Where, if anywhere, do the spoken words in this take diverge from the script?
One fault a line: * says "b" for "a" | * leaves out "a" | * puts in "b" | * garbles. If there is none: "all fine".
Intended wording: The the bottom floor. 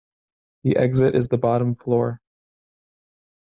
* puts in "exit is"